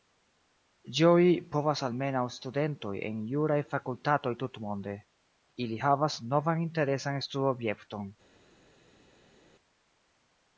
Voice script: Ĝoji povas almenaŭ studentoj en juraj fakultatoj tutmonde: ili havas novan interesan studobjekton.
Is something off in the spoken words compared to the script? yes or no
no